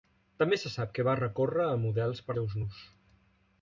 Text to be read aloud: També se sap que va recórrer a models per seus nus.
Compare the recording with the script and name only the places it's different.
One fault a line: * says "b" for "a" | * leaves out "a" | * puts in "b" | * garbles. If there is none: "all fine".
all fine